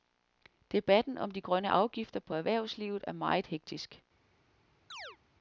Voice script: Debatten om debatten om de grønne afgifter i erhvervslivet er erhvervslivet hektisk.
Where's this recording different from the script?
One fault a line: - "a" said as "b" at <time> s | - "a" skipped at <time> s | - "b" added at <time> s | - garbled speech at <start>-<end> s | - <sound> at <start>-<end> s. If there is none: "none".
- "debatten om" skipped at 1.3 s
- "i" said as "på" at 2.2 s
- "erhvervslivet" said as "meget" at 3.1 s
- chirp at 4.9-5.2 s